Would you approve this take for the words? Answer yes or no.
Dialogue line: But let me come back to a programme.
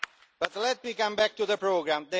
no